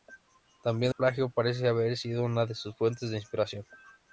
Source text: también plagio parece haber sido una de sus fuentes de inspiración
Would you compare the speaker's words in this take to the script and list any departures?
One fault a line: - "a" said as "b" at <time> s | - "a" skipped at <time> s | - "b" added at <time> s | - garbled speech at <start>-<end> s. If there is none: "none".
none